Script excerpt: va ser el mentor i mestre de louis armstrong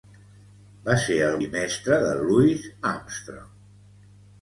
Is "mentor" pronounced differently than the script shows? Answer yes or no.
yes